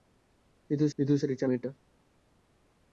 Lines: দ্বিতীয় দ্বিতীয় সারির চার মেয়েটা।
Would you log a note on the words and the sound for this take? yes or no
no